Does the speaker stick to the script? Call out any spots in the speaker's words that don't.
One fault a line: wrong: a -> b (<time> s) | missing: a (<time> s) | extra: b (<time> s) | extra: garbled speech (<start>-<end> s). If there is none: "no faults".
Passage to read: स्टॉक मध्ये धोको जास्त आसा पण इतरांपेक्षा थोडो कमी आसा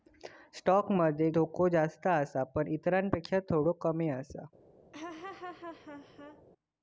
no faults